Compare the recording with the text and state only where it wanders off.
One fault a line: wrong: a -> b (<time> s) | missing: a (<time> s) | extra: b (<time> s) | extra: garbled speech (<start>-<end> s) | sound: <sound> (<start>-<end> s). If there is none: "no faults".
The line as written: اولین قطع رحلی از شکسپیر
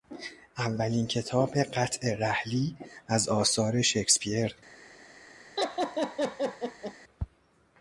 extra: کتاب (1.1 s)
extra: آثار (3.3 s)
sound: laugh (5.6-6.9 s)